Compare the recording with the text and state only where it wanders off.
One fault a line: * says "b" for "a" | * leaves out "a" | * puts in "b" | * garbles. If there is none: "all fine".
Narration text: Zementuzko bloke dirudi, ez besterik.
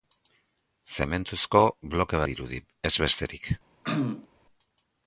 all fine